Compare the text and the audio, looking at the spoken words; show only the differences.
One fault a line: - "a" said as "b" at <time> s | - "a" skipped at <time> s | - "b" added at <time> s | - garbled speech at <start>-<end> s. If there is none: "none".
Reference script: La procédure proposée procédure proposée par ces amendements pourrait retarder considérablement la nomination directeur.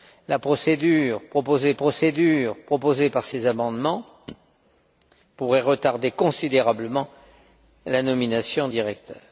none